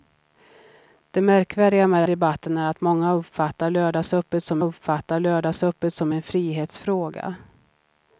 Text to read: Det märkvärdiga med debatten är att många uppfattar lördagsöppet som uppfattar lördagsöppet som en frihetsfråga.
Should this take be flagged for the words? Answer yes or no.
no